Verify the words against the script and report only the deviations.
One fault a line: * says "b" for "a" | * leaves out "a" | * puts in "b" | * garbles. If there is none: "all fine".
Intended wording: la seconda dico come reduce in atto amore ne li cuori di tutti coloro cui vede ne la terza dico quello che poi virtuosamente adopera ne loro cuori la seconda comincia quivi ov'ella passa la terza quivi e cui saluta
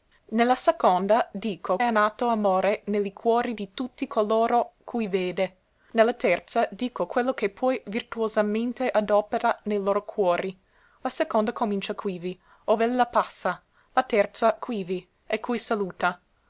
* leaves out "come reduce"